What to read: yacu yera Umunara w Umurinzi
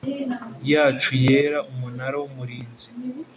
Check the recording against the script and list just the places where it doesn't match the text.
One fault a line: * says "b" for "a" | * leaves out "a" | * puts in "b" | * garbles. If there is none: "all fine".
all fine